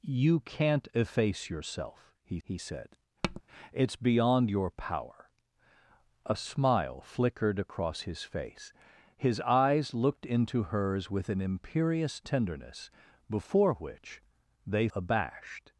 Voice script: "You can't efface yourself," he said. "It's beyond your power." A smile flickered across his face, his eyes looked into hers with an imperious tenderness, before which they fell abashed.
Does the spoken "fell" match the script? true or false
false